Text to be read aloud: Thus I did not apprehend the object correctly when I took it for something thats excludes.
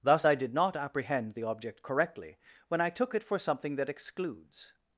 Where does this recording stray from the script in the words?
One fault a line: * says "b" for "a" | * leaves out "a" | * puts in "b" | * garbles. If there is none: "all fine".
* says "that" for "thats"